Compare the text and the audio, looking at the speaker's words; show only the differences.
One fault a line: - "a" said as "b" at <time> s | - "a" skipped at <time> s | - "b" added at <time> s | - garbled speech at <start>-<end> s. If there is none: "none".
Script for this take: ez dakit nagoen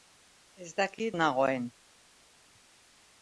none